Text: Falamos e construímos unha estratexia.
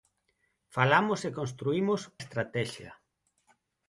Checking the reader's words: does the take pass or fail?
fail